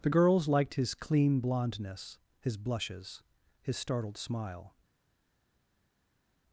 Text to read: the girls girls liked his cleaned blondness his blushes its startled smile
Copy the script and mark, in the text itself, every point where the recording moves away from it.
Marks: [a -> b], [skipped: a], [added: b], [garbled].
the girls [skipped: girls] liked his [cleaned -> clean] blondness his blushes [its -> his] startled smile